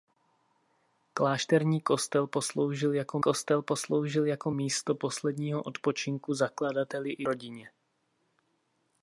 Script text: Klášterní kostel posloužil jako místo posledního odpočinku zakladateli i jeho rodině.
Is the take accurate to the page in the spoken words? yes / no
no